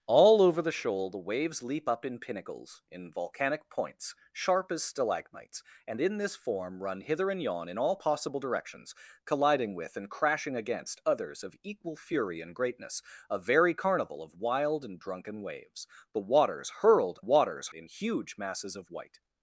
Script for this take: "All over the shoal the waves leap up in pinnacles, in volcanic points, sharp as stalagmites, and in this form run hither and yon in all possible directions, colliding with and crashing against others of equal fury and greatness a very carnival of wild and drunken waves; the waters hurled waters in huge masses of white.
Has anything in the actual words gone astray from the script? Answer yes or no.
no